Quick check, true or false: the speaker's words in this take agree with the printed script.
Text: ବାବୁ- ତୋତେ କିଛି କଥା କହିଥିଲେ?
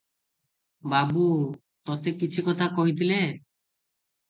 true